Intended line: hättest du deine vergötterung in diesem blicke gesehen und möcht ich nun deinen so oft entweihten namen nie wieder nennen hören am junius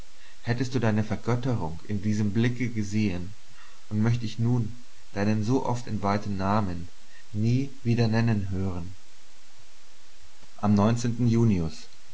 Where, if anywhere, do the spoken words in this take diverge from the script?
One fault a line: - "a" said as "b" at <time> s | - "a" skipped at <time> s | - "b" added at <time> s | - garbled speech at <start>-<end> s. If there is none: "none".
none